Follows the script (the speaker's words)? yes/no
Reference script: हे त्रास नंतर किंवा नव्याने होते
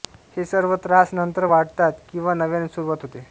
no